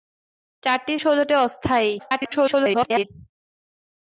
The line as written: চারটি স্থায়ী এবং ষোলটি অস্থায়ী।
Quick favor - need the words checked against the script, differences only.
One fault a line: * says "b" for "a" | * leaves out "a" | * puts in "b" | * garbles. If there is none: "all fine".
* leaves out "স্থায়ী এবং"
* garbles